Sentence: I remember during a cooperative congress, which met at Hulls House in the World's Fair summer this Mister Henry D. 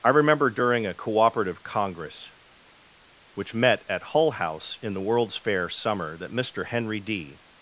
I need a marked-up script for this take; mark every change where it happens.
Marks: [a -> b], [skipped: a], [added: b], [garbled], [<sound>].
I remember during a cooperative congress, which met at [Hulls -> Hull] House in the World's Fair summer [this -> that] Mister Henry D.